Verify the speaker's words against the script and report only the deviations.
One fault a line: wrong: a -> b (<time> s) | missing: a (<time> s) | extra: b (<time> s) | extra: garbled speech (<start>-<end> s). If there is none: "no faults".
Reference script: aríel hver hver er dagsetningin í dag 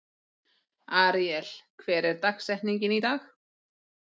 missing: hver (2.1 s)